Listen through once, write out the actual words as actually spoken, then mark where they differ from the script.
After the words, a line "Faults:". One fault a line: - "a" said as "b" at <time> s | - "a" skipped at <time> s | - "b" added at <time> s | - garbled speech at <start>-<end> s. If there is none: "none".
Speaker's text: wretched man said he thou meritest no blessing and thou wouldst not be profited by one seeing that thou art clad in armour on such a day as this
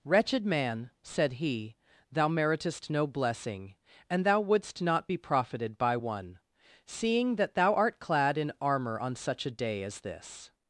wretched man said he thou meritest no blessing and thou wouldst not be profited by one seeing that thou art clad in armour on such a day as this
Faults:
none